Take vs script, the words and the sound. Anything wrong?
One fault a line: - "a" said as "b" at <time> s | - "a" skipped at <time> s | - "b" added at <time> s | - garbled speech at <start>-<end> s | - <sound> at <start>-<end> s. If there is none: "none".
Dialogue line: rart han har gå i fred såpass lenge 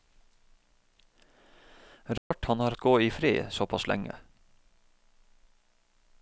- dropout at 2.2-2.3 s